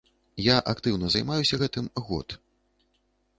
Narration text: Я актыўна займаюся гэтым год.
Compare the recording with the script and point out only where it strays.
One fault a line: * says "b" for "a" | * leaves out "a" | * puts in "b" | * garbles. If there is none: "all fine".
all fine